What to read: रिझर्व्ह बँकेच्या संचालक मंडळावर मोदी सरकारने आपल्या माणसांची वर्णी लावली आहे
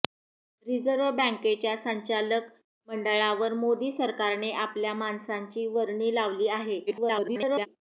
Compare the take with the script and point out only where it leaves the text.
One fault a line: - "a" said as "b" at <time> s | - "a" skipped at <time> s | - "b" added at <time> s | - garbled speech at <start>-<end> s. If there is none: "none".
- garbled speech at 6.9-7.7 s